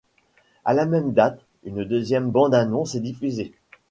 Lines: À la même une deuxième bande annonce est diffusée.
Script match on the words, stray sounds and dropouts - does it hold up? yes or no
no